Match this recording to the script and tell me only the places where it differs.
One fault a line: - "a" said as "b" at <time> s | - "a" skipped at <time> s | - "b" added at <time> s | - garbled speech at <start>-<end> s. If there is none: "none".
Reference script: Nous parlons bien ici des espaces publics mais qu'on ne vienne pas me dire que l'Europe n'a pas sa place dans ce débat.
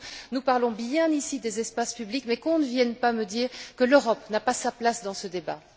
none